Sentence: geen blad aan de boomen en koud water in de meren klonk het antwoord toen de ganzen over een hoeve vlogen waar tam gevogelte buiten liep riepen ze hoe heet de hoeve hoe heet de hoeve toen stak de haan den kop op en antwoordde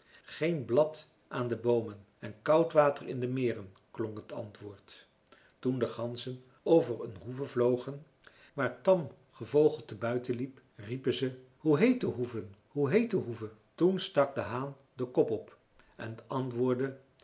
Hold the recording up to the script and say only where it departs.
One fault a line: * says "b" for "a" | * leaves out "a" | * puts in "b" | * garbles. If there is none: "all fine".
all fine